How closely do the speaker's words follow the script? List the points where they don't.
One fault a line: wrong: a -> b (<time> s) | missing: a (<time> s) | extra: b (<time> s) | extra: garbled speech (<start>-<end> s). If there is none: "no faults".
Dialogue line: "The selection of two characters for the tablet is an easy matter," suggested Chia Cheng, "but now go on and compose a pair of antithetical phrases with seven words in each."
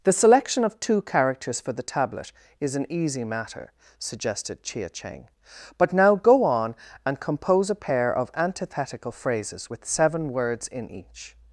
no faults